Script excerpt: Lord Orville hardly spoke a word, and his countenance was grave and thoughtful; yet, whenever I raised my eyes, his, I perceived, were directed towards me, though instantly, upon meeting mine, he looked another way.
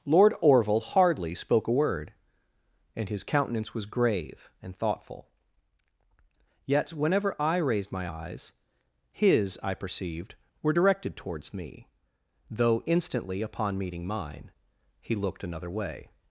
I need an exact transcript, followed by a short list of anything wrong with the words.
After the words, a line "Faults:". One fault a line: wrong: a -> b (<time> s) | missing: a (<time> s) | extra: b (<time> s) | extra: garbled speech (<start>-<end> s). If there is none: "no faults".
Lord Orville hardly spoke a word, and his countenance was grave and thoughtful; yet, whenever I raised my eyes, his, I perceived, were directed towards me, though instantly, upon meeting mine, he looked another way.
Faults:
no faults